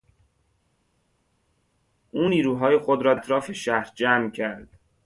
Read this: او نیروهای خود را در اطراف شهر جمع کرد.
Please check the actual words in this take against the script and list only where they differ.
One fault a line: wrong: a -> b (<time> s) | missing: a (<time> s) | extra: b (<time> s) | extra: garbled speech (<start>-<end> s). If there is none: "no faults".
missing: در (3.1 s)